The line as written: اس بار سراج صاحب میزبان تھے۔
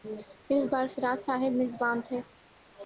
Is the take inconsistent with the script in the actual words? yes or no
no